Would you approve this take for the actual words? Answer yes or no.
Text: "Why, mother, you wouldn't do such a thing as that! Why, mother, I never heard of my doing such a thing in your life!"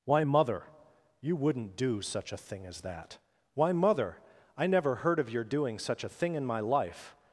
no